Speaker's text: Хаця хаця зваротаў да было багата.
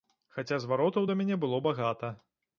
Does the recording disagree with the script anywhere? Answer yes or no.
yes